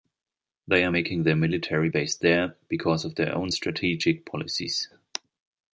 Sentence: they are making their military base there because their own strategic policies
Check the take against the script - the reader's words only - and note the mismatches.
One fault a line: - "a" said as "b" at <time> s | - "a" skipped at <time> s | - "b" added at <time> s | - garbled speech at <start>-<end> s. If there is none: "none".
- "of" added at 3.1 s